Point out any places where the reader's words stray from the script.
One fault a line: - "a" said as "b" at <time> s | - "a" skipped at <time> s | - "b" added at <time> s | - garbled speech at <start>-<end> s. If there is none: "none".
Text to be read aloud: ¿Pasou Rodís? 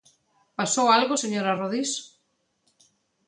- "algo señora" added at 1.0 s